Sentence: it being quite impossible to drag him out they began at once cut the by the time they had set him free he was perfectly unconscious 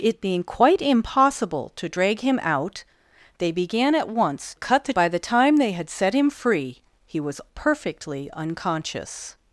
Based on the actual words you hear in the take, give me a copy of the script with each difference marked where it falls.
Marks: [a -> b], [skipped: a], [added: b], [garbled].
it being quite impossible to drag him out they began at once cut the by the time they had set him free he was perfectly unconscious